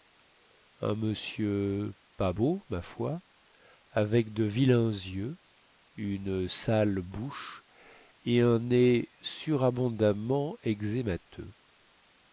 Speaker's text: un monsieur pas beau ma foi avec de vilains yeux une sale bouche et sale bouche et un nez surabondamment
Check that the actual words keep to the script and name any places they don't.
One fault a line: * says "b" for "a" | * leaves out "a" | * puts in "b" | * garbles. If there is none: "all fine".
* leaves out "sale bouche et"